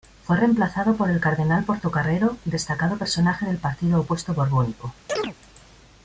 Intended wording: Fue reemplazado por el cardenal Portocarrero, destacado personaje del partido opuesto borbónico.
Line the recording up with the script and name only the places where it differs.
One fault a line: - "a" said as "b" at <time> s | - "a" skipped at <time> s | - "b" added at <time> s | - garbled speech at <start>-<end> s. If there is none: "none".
none